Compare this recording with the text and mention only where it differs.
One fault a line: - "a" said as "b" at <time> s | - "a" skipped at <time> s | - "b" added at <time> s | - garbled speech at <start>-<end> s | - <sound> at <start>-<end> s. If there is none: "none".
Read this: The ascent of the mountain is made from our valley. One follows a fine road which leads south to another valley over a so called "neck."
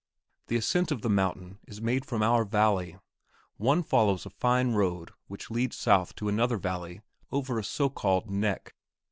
none